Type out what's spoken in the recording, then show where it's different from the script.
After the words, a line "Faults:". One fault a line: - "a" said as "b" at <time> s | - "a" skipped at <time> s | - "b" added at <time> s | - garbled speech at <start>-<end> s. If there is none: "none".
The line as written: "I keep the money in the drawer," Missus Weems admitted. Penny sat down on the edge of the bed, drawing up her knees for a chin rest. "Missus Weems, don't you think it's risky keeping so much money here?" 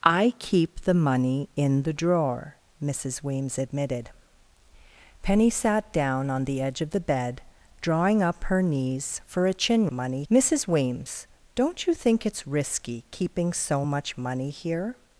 "I keep the money in the drawer," Missus Weems admitted. Penny sat down on the edge of the bed, drawing up her knees for a chin money. "Missus Weems, don't you think it's risky keeping so much money here?"
Faults:
- "rest" said as "money" at 9.9 s